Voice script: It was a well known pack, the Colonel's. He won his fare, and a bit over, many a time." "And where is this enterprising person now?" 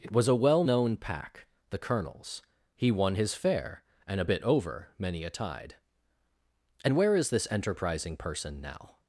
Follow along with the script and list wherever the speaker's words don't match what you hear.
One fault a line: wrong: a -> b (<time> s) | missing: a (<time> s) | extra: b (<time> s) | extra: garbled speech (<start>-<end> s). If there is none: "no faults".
wrong: time -> tide (5.3 s)